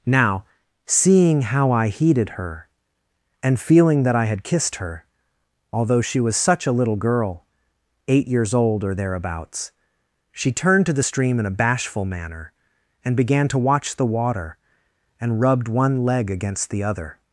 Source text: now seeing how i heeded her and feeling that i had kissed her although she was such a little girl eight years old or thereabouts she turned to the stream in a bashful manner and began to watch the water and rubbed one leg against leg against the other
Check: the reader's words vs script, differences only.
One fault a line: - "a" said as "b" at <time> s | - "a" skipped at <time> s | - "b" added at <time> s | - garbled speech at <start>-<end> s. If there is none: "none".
- "leg against" skipped at 16.7 s